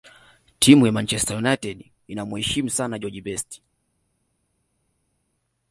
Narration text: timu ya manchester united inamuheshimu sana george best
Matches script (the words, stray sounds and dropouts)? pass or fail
pass